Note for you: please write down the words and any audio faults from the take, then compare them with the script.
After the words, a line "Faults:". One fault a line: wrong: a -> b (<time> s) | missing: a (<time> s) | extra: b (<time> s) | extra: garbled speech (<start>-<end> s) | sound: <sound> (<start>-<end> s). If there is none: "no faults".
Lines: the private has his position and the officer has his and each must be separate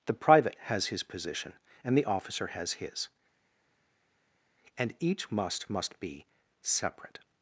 the private has his position and the officer has his and each must must be separate
Faults:
extra: must (5.7 s)